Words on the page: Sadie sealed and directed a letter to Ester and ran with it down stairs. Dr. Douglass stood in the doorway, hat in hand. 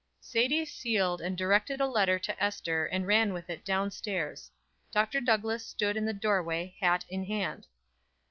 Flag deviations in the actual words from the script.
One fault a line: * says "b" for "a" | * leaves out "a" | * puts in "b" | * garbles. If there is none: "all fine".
all fine